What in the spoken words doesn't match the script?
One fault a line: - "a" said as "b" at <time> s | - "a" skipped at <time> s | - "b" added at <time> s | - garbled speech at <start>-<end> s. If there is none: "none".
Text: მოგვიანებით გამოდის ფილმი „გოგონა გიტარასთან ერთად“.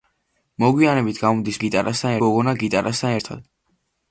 - "ფილმი" said as "გიტარასთან" at 1.6 s